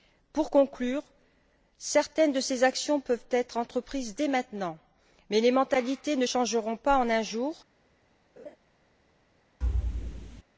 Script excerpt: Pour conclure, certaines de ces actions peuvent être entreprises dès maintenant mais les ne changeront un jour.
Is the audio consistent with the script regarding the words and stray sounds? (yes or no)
no